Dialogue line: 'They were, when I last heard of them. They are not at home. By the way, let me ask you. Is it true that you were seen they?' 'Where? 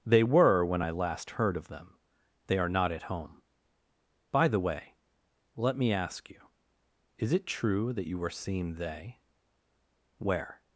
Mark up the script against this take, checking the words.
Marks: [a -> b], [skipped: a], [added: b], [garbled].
'They were, when I last heard of them. They are not at home. By the way, let me ask you. Is it true that you were seen they?' 'Where?